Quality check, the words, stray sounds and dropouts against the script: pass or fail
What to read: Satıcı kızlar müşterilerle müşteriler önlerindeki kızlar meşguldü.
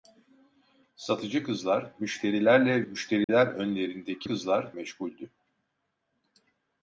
fail